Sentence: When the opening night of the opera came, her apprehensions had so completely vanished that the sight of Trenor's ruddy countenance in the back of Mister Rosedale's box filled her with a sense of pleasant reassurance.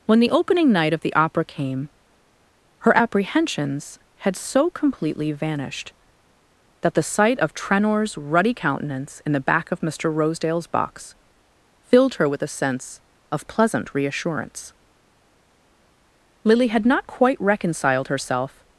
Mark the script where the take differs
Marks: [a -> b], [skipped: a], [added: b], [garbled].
When the opening night of the opera came, her apprehensions had so completely vanished that the sight of Trenor's ruddy countenance in the back of Mister Rosedale's box filled her with a sense of pleasant reassurance. [added: Lily had not quite reconciled herself]